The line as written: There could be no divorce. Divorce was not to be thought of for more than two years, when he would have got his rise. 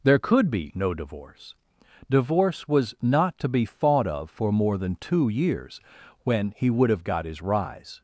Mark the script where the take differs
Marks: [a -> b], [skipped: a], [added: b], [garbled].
There could be no divorce. Divorce was not to be thought of for more than two years, when he would have got his rise.